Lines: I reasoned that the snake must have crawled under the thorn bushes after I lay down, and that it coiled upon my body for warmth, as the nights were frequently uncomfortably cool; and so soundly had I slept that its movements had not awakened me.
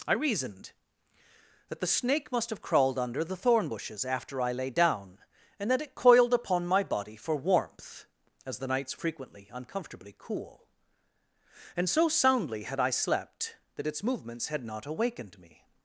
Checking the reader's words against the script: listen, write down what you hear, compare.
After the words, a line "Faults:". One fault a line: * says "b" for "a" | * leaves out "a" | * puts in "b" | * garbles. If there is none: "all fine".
I reasoned that the snake must have crawled under the thorn bushes after I lay down, and that it coiled upon my body for warmth, as the nights frequently uncomfortably cool; and so soundly had I slept that its movements had not awakened me.
Faults:
* leaves out "were"